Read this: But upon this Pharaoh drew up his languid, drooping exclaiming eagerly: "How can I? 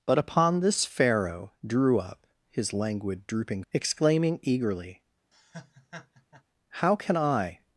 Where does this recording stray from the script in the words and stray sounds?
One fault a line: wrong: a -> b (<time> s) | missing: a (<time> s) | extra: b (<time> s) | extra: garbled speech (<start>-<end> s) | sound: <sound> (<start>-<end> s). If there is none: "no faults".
sound: laugh (5.3-6.4 s)